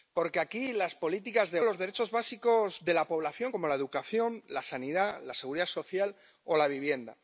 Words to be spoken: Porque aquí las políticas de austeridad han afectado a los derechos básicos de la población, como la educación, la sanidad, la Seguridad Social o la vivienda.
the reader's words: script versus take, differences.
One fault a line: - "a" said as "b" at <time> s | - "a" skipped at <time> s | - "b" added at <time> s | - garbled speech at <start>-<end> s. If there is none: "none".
- "austeridad han afectado" skipped at 1.6 s